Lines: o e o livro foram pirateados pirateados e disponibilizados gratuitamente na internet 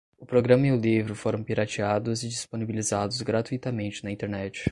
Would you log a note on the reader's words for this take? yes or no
yes